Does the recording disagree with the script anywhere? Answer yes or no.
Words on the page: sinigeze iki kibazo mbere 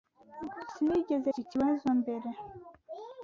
no